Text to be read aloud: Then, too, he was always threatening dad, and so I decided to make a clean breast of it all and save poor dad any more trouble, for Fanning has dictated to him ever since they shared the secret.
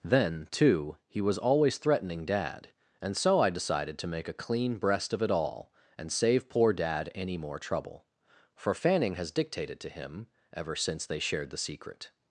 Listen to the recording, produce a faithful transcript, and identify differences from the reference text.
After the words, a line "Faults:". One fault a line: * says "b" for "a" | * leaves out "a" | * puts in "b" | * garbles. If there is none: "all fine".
Then, too, he was always threatening dad, and so I decided to make a clean breast of it all and save poor dad any more trouble, for Fanning has dictated to him ever since they shared the secret.
Faults:
all fine